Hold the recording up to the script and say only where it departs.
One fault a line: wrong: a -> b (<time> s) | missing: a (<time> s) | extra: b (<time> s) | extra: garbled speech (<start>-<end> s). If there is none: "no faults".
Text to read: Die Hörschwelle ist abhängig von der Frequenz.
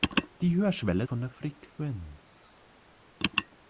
missing: ist abhängig (1.0 s)